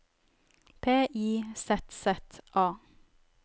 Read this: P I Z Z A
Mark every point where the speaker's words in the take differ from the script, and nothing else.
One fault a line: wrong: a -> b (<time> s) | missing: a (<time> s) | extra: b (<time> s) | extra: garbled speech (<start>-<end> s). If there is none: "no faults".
no faults